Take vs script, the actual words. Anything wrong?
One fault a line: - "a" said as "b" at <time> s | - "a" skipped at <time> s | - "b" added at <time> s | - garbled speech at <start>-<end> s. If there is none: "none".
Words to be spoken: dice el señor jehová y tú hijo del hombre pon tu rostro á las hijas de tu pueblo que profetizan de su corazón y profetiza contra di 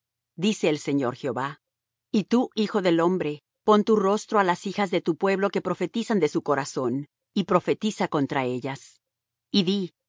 - "ellas y" added at 8.5 s